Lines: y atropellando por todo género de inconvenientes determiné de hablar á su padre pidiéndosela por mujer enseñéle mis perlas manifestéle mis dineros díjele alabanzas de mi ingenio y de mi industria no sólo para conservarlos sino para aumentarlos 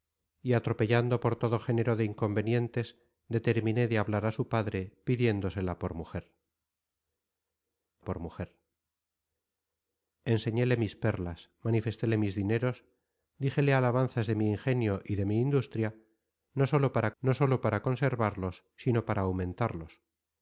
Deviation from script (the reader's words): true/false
true